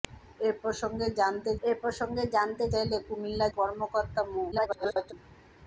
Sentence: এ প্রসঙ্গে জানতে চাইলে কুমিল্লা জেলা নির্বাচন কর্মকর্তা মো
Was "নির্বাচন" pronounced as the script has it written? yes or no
no